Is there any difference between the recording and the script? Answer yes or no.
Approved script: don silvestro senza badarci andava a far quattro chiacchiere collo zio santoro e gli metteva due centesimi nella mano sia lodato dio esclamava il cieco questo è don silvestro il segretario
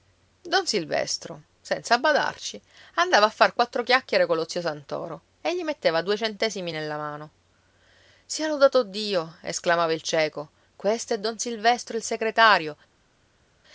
no